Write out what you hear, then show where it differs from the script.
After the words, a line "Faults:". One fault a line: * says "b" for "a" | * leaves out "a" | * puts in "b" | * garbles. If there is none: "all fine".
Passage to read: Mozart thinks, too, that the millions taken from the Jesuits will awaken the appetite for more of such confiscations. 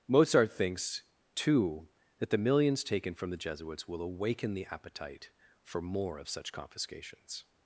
Mozart thinks, too, that the millions taken from the Jesuits will awaken the appetite for more of such confiscations.
Faults:
all fine